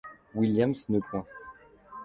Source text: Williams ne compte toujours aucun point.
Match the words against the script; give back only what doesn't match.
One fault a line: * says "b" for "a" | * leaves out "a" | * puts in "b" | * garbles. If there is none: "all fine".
* leaves out "compte toujours aucun"